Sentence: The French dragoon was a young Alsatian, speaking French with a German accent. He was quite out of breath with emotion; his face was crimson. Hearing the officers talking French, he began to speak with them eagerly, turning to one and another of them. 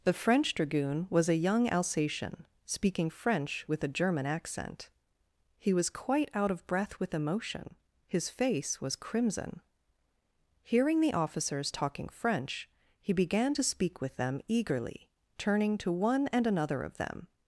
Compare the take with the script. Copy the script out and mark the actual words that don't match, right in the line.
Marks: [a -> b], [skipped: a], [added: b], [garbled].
The French dragoon was a young Alsatian, speaking French with a German accent. He was quite out of breath with emotion; his face was crimson. Hearing the officers talking French, he began to speak with them eagerly, turning to one and another of them.